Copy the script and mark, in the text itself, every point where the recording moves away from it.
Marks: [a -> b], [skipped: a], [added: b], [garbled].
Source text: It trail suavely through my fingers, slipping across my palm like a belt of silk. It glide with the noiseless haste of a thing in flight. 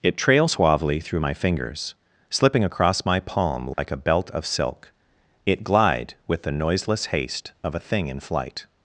It trail suavely through my fingers, slipping across my palm like a belt of silk. It glide with the noiseless haste of a thing in flight.